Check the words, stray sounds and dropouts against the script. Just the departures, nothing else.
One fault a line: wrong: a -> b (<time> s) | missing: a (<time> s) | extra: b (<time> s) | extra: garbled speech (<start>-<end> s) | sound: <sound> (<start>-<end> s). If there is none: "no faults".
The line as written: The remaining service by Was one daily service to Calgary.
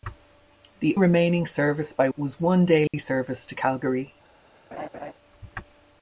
sound: dropout (2.9-2.9 s)
sound: laugh (4.7-5.1 s)